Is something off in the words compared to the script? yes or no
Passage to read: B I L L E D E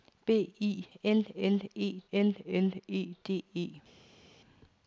yes